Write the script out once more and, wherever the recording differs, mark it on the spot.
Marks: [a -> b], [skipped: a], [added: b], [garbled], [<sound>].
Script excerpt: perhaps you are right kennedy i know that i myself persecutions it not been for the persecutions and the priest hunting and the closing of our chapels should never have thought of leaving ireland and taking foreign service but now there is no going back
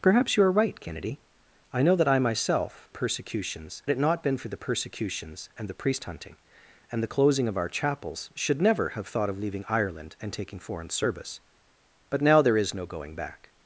perhaps you are right kennedy i know that i myself persecutions it not been for the persecutions and the priest hunting and the closing of our chapels should never have thought of leaving ireland and taking foreign service but now there is no going back